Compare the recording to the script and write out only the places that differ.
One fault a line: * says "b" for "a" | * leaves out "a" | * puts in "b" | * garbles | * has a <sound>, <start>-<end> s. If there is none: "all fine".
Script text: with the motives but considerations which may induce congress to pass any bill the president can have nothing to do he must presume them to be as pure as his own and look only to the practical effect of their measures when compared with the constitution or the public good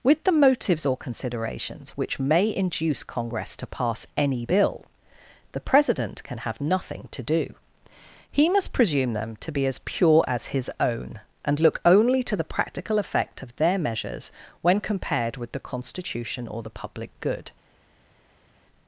* says "or" for "but"